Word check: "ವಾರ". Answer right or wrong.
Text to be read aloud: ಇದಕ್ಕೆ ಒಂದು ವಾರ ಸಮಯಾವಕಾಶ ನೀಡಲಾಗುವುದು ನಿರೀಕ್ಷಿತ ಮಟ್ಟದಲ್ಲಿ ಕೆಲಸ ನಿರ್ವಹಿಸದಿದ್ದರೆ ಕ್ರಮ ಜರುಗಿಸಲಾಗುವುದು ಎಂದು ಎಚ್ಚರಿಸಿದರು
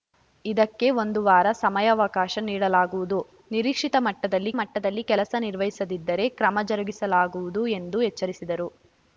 right